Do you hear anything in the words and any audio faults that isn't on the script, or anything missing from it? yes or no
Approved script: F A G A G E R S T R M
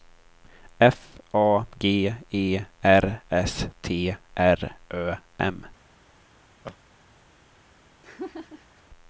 yes